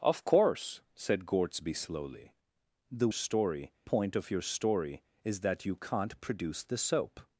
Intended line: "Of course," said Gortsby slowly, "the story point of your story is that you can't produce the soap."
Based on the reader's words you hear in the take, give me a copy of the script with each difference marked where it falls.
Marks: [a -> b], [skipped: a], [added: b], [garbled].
"Of course," said Gortsby slowly, "the story point of your story is that you can't produce the soap."